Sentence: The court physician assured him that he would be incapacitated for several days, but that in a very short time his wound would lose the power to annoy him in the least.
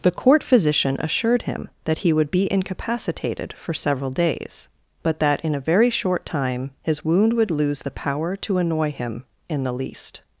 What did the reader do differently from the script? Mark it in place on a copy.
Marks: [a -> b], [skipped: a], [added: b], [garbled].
The court physician assured him that he would be incapacitated for several days, but that in a very short time his wound would lose the power to annoy him in the least.